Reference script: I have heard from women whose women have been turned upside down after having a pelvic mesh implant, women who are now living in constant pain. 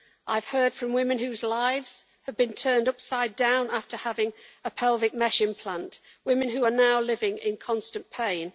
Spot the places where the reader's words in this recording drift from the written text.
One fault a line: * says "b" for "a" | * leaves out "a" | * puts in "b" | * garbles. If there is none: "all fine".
* says "lives" for "women"